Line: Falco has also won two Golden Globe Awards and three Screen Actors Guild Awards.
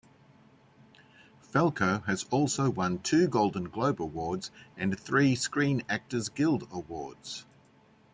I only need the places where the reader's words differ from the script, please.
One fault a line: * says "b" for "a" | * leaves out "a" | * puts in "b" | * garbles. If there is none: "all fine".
all fine